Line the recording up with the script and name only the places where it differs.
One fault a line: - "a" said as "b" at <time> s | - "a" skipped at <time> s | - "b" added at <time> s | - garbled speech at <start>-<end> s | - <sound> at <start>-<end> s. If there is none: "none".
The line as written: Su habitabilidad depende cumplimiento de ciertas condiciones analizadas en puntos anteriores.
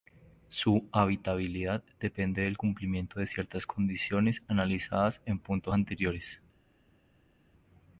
- "del" added at 2.4 s